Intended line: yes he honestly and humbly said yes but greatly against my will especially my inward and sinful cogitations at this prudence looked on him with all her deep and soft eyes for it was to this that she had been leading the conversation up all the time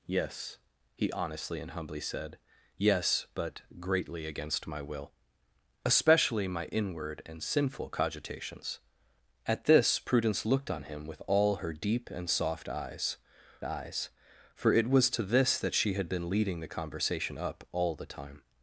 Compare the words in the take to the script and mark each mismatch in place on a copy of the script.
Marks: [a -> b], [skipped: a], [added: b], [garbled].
yes he honestly and humbly said yes but greatly against my will especially my inward and sinful cogitations at this prudence looked on him with all her deep and soft eyes [added: eyes] for it was to this that she had been leading the conversation up all the time